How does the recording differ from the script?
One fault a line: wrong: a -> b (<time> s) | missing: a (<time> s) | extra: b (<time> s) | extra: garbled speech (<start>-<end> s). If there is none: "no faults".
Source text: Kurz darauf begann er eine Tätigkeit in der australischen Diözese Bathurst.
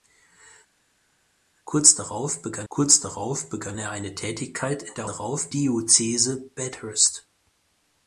extra: kurz darauf begann (2.7 s)
wrong: australischen -> darauf (5.0 s)